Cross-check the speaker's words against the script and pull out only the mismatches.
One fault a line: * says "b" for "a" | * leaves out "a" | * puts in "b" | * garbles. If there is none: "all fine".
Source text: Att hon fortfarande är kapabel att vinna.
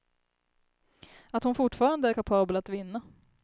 all fine